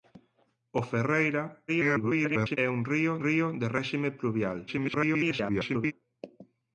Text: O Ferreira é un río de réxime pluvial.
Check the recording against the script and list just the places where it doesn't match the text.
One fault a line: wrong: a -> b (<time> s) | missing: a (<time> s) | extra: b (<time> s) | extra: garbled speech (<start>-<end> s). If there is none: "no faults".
extra: garbled speech (1.7-2.6 s)
extra: río (3.2 s)
extra: garbled speech (4.7-5.9 s)